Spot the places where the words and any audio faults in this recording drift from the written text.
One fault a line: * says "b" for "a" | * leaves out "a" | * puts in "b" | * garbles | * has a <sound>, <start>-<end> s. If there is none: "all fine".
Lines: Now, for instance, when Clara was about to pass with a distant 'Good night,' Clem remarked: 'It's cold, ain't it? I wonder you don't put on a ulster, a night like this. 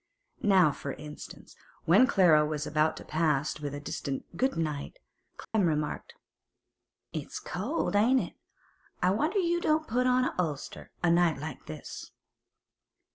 * has a dropout, 5.4-5.5 s